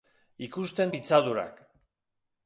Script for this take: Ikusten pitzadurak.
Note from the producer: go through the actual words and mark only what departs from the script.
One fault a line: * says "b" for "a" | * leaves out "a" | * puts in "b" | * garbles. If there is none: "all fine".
all fine